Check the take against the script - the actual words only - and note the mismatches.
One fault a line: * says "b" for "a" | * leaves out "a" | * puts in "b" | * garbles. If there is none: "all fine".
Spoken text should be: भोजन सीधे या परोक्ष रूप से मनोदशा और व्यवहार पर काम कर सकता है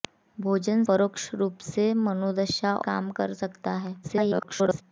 * leaves out "सीधे या"
* leaves out "और व्यवहार पर"
* garbles